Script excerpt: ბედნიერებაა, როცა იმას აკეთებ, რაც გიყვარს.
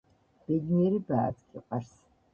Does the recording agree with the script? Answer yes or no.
no